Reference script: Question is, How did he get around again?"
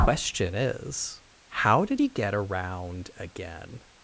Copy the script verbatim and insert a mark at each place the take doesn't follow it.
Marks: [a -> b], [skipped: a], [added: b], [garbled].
Question is, How did he get around again?"